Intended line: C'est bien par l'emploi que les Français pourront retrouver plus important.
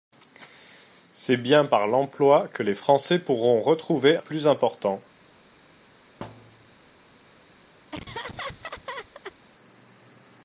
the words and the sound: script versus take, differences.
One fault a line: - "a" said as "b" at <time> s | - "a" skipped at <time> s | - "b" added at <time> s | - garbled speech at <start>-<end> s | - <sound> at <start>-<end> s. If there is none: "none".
- thud at 6.2-6.8 s
- laugh at 7.9-9.4 s